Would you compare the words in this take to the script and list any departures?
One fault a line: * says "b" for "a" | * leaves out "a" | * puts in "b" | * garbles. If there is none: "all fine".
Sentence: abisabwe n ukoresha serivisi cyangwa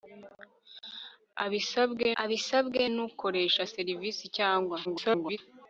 * puts in "abisabwe"
* garbles